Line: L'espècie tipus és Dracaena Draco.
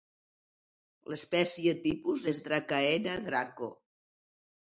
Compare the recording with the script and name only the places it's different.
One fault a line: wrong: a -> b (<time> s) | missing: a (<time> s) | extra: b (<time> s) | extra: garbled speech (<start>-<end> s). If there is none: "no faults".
no faults